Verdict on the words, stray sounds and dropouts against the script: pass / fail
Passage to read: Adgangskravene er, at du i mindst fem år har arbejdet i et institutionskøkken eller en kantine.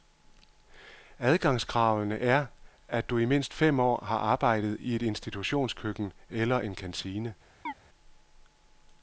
fail